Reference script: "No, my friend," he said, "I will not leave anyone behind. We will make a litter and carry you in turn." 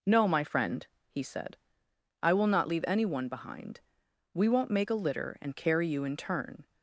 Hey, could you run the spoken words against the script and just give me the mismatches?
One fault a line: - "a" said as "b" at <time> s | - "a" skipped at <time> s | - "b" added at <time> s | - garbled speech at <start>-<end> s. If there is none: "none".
- "will" said as "won't" at 4.5 s